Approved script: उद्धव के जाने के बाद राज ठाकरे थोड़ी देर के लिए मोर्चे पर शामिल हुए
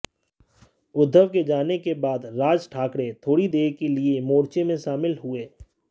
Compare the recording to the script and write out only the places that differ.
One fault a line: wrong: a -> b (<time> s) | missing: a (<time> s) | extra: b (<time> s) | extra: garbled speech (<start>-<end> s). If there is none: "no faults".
wrong: पर -> में (4.6 s)